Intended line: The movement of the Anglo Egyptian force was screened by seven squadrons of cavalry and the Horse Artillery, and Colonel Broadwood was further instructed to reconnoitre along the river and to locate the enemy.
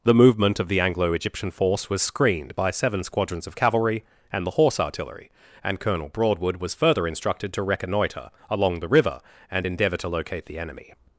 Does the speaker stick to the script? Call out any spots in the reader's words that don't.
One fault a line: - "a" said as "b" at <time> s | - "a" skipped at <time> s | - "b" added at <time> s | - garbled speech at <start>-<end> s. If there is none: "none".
- "endeavour" added at 9.7 s